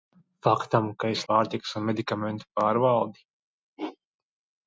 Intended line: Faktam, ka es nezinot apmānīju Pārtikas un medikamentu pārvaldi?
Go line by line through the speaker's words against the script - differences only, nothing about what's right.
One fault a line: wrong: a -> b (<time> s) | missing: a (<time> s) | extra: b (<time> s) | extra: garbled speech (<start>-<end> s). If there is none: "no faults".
missing: nezinot apmānīju (1.2 s)